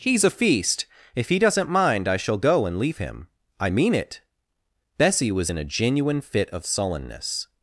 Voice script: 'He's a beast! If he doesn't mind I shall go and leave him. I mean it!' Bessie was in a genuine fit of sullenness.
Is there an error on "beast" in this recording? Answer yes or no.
yes